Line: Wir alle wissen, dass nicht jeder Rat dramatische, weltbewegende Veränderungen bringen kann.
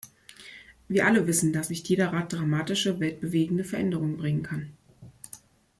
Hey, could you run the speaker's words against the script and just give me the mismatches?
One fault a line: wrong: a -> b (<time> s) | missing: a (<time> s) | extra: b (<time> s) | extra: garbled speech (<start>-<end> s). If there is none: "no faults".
no faults